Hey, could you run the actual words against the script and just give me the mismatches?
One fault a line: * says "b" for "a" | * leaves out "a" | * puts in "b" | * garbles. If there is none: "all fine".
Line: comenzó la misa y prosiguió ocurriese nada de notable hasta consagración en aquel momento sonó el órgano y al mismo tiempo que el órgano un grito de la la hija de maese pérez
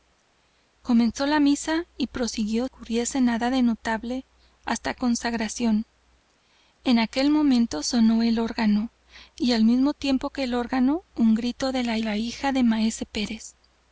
all fine